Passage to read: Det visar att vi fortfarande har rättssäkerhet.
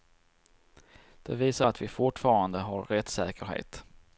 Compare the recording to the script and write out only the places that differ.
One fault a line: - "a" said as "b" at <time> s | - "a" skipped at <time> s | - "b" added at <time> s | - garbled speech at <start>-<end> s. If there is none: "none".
none